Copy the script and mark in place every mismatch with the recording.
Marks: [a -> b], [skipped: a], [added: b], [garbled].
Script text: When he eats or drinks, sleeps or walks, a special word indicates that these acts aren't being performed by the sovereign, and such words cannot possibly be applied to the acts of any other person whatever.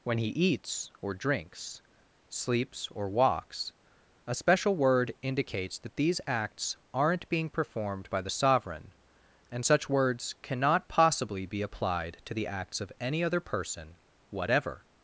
When he eats or drinks, sleeps or walks, a special word indicates that these acts aren't being performed by the sovereign, and such words cannot possibly be applied to the acts of any other person whatever.